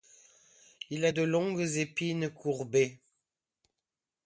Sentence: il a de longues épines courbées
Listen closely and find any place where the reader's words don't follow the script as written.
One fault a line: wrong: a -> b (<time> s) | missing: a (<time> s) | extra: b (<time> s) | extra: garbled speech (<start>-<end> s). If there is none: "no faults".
no faults